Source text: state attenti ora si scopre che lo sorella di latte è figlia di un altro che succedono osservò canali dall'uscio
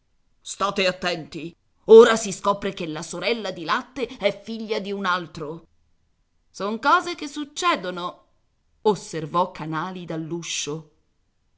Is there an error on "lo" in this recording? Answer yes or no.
yes